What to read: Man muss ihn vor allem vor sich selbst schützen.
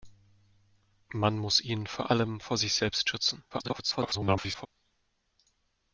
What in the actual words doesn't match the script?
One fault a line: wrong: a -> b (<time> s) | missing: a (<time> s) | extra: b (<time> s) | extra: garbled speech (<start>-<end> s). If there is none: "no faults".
extra: garbled speech (3.5-4.7 s)